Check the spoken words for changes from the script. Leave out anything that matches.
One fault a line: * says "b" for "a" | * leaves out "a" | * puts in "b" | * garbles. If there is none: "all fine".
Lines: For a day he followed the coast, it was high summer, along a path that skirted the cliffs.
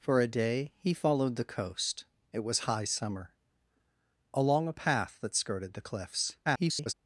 * garbles